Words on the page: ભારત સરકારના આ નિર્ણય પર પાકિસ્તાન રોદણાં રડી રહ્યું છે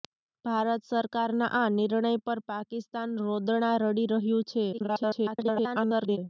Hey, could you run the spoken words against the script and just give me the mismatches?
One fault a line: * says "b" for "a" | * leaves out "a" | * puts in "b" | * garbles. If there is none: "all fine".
* garbles